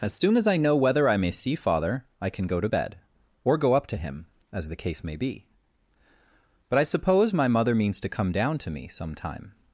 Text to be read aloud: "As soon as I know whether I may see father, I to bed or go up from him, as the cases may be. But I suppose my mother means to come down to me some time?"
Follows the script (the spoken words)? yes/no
no